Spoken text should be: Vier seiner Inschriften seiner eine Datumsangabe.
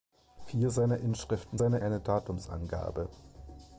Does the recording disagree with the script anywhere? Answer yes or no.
no